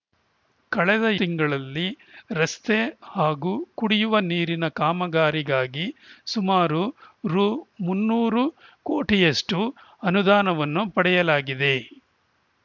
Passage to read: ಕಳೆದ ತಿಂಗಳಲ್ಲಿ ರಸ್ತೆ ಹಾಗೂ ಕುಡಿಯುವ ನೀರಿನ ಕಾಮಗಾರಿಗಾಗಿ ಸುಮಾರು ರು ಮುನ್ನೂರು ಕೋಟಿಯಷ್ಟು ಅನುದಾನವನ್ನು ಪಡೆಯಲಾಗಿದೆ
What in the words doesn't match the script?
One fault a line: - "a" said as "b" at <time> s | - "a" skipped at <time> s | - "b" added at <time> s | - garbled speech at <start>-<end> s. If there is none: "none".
none